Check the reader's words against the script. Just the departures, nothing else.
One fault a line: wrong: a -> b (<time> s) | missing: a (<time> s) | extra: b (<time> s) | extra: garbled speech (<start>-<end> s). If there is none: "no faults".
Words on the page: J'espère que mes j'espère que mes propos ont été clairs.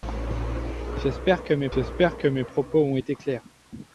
no faults